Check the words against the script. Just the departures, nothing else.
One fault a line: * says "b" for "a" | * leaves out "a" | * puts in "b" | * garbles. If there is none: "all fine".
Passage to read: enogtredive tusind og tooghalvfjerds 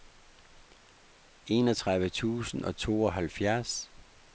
all fine